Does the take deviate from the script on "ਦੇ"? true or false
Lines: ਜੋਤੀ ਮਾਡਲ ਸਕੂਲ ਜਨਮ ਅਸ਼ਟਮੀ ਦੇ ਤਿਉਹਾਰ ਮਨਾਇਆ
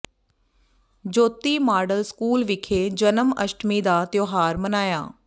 true